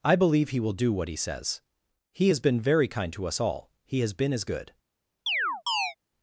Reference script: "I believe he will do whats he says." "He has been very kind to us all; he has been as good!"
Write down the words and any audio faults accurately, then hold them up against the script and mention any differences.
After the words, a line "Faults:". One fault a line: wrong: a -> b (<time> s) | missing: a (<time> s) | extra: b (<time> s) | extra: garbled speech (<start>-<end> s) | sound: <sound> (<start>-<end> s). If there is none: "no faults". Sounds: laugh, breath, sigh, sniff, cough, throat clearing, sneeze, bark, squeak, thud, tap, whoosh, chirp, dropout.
"I believe he will do what he says." "He has been very kind to us all; he has been as good!"
Faults:
wrong: whats -> what (0.9 s)
sound: chirp (5.3-6.0 s)